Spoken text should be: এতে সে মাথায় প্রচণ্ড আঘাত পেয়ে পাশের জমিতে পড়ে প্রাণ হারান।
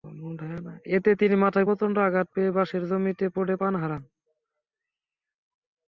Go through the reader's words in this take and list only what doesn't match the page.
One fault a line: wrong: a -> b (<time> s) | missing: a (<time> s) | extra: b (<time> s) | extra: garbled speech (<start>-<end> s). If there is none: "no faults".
wrong: সে -> তিনি (1.1 s)